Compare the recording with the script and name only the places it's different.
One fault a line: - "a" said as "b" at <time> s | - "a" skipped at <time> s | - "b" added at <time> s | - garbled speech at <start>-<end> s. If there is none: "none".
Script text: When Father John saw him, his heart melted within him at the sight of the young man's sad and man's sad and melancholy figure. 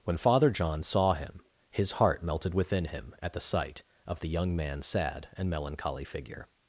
- "man's sad and" skipped at 5.5 s